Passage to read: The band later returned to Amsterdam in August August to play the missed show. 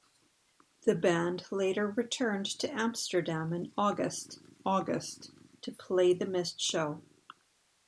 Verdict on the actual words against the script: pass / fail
pass